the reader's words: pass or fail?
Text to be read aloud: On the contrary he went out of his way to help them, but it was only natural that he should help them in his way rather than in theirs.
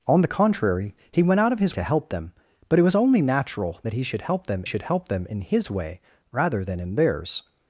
fail